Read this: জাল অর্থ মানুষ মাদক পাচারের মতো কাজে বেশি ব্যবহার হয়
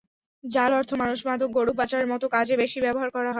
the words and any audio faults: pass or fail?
fail